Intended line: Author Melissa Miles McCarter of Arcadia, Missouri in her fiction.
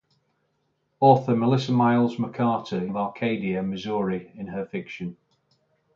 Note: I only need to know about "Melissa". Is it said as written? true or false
true